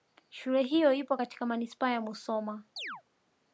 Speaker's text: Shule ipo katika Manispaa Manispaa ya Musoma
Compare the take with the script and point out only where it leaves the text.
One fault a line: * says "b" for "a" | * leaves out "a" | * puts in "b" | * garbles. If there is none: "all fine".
* puts in "hiyo"
* leaves out "Manispaa"